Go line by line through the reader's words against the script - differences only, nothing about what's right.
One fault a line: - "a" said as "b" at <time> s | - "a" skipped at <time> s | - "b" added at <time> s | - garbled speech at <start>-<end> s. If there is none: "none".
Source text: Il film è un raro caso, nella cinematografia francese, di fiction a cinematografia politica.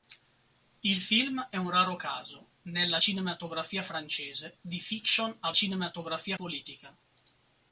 none